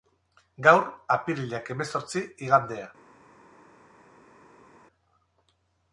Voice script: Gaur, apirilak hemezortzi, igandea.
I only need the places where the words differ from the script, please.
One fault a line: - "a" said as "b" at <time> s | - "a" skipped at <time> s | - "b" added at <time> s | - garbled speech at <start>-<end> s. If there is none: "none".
none